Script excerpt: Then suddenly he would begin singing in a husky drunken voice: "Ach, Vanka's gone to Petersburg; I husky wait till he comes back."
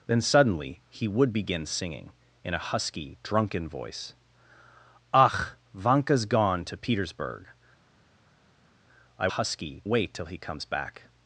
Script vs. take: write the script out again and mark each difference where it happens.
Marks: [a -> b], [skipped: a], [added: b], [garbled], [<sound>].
Then suddenly he would begin singing in a husky drunken voice: "Ach, Vanka's gone to Petersburg; I husky wait till he comes back."